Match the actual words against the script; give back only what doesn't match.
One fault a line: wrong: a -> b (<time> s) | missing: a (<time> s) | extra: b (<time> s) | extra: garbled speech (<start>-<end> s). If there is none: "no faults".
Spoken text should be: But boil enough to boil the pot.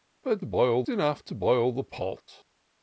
no faults